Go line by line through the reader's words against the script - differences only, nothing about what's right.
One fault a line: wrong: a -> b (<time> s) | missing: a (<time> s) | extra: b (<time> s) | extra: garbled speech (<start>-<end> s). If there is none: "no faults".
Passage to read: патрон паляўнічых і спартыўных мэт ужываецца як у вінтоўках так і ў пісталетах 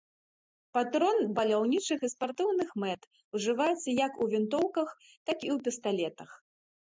no faults